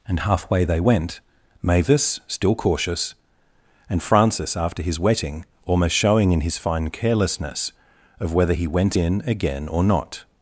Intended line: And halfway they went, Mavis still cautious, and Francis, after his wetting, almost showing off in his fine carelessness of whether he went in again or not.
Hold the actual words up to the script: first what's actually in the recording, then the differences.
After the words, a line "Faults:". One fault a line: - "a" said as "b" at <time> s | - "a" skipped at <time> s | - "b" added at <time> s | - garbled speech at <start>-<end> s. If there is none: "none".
And halfway they went, Mavis still cautious, and Francis, after his wetting, almost showing in his fine carelessness of whether he went in again or not.
Faults:
- "off" skipped at 6.3 s